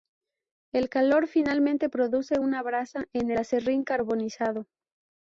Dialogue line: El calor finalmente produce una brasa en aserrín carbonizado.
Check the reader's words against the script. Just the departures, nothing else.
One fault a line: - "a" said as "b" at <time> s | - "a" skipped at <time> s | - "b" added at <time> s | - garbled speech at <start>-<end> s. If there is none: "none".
none